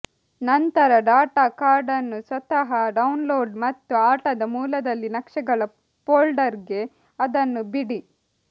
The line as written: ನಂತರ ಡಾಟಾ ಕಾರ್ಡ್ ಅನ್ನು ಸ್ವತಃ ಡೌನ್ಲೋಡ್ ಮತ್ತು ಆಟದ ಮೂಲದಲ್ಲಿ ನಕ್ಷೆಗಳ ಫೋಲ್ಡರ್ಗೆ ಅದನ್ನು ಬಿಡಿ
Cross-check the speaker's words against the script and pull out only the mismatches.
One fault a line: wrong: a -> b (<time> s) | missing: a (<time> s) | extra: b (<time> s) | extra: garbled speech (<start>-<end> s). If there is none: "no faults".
no faults